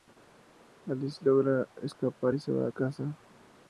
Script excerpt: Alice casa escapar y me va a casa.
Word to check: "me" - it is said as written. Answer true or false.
false